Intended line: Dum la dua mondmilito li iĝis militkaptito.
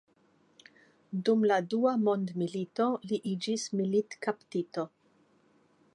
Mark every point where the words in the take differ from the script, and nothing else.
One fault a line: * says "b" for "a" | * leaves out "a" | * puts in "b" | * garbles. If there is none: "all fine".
all fine